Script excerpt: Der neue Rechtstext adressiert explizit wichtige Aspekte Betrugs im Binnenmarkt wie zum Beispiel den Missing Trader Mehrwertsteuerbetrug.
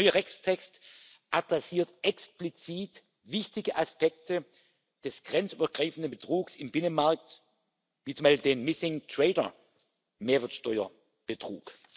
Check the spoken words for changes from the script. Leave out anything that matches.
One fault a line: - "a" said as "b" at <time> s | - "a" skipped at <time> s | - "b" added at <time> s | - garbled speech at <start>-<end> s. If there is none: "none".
- "des grenzübergreifenden" added at 5.0 s